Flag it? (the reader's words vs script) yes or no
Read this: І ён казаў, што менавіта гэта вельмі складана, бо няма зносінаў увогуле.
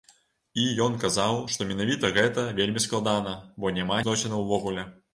no